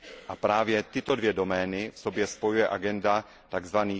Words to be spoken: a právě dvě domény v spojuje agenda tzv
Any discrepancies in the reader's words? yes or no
yes